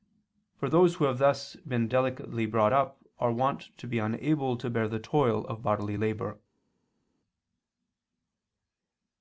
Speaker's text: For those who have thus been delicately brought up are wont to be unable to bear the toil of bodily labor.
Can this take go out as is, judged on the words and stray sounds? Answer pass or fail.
pass